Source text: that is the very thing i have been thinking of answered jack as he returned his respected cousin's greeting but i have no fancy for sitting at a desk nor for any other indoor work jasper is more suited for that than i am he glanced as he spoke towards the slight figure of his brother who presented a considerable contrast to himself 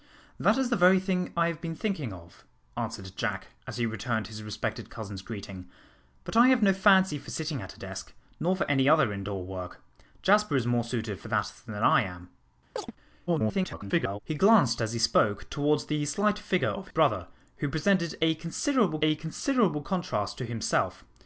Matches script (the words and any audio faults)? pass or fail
fail